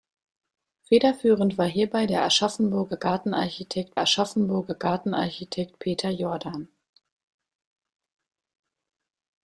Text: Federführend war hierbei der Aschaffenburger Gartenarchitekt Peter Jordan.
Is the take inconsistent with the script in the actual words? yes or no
yes